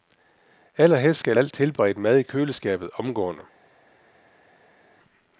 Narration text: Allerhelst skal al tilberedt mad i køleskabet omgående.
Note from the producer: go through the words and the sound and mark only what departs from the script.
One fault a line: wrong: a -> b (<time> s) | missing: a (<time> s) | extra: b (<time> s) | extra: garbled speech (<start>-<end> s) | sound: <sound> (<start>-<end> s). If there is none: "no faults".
no faults